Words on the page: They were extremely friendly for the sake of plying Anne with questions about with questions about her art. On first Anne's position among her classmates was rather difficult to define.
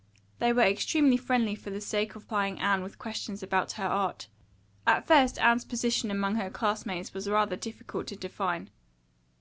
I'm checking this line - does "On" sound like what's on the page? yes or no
no